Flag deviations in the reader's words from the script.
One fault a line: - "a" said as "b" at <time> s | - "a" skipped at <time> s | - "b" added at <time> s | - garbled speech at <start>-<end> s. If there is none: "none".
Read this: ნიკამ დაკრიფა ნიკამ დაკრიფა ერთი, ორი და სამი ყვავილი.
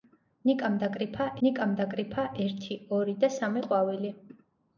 none